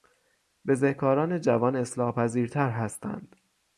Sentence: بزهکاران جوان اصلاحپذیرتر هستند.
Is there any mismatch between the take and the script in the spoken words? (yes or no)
no